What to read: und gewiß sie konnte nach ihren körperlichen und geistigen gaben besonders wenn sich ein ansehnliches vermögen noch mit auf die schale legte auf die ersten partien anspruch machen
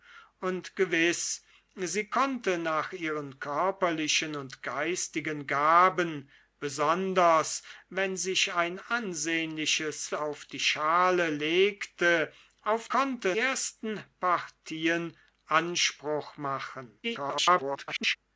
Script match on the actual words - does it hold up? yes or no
no